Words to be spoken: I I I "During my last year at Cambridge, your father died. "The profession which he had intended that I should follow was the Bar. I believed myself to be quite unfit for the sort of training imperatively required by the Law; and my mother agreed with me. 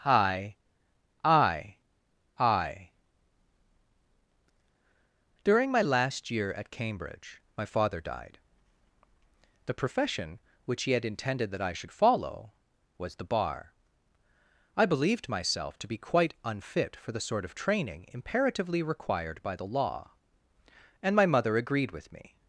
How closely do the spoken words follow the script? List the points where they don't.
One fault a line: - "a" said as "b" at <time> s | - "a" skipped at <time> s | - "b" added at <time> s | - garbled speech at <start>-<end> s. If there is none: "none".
- "your" said as "my" at 7.5 s